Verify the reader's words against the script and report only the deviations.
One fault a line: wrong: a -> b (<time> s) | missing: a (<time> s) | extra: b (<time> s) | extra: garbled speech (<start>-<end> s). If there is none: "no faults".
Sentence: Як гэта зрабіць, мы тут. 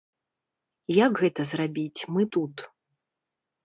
no faults